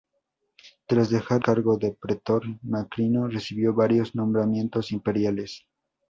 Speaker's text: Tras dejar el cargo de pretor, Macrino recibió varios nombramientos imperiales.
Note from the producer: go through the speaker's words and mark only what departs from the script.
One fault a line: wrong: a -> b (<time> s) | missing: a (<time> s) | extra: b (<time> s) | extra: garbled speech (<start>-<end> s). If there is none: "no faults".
missing: el (1.4 s)